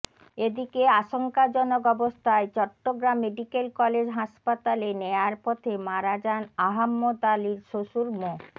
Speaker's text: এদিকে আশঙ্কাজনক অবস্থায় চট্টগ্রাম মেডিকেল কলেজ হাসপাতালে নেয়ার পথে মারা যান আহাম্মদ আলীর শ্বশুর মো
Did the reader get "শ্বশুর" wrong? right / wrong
right